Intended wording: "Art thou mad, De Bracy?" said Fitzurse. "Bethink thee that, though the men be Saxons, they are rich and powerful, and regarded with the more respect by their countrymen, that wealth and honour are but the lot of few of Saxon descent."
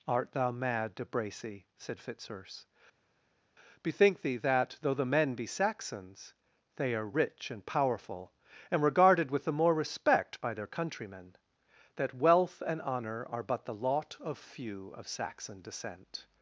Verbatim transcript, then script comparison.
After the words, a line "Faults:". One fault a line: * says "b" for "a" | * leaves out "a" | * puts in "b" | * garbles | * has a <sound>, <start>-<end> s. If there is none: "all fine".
"Art thou mad, De Bracy?" said Fitzurse. "Bethink thee that, though the men be Saxons, they are rich and powerful, and regarded with the more respect by their countrymen, that wealth and honour are but the lot of few of Saxon descent."
Faults:
all fine